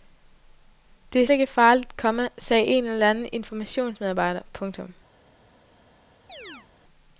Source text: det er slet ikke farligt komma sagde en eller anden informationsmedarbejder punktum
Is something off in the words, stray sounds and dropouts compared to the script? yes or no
yes